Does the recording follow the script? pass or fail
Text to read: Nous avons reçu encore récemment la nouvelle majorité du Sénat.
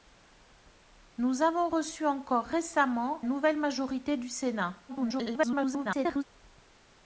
fail